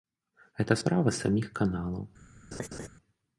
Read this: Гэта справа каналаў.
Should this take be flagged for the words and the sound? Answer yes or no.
yes